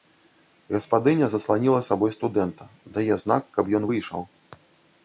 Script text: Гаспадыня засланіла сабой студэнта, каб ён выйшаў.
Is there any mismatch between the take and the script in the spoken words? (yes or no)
yes